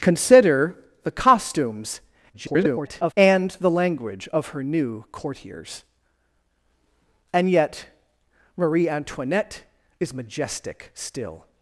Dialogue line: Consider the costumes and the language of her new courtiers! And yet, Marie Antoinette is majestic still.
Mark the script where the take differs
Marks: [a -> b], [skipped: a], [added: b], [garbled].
Consider the costumes [garbled] and the language of her new courtiers! And yet, Marie Antoinette is majestic still.